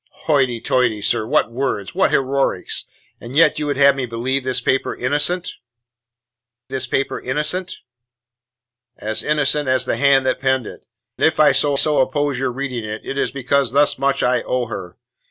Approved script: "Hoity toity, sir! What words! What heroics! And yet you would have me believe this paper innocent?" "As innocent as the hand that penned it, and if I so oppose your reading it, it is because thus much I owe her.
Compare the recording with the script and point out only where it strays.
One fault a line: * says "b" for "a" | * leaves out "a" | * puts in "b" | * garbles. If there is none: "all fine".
* puts in "this paper innocent"
* leaves out "and"
* puts in "so"